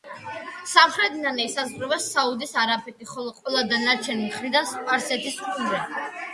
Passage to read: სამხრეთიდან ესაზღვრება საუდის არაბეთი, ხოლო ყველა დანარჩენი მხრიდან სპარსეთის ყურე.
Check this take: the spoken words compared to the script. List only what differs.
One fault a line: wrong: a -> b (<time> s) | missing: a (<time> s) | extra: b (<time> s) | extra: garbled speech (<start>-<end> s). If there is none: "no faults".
no faults